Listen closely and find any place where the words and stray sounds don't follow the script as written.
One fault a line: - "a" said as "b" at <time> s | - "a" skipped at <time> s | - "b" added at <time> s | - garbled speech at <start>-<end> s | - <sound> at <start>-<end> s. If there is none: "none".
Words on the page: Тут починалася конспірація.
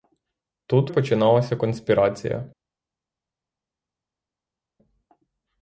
none